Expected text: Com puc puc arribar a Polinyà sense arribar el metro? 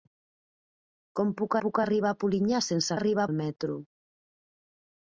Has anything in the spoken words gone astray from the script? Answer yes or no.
no